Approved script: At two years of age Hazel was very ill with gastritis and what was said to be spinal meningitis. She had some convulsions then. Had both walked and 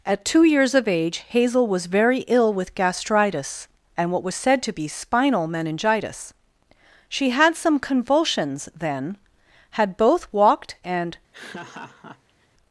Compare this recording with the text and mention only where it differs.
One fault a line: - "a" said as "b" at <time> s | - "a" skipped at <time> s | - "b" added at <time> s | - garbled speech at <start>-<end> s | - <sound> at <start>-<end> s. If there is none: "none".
- laugh at 11.3-12.5 s